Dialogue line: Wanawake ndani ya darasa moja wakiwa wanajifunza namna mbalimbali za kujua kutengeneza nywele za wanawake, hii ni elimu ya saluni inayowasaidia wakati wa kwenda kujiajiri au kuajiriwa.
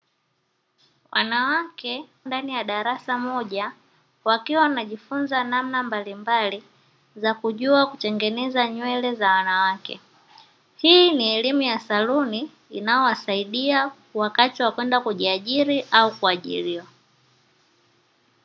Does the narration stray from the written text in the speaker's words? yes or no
no